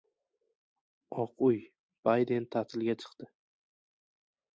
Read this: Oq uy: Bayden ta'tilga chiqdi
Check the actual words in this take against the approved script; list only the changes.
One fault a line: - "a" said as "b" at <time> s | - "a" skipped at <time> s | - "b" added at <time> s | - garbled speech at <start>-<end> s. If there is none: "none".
none